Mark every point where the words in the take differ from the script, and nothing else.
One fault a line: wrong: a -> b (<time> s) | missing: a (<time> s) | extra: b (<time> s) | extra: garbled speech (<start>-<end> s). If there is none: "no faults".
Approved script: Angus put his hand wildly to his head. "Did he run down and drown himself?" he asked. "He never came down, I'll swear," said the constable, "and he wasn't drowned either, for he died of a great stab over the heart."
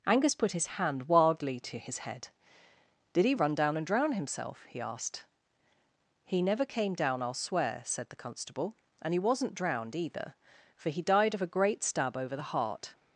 no faults